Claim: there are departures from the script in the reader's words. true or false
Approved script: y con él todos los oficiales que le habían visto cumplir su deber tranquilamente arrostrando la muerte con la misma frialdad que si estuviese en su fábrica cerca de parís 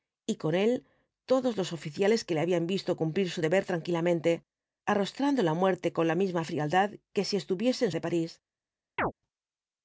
true